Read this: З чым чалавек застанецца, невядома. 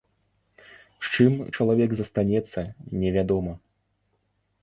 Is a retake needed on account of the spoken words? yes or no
no